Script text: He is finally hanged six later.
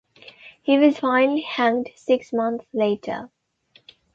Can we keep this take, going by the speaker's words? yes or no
no